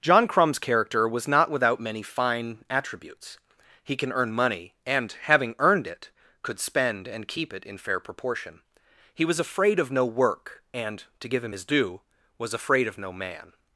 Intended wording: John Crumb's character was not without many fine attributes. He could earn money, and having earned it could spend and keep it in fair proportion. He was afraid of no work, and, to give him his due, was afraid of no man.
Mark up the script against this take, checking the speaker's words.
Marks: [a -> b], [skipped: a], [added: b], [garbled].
John Crumb's character was not without many fine attributes. He [could -> can] earn money, and having earned it could spend and keep it in fair proportion. He was afraid of no work, and, to give him his due, was afraid of no man.